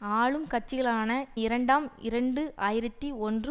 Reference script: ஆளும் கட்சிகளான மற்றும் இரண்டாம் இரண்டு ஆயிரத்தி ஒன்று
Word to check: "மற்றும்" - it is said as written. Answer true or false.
false